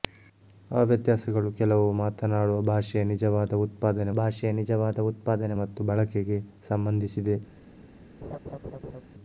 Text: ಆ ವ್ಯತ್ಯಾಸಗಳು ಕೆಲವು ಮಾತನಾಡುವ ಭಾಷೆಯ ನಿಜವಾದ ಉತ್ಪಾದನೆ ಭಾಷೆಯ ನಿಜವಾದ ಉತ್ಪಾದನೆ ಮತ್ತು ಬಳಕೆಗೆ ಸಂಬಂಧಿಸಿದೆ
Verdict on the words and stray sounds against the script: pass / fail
fail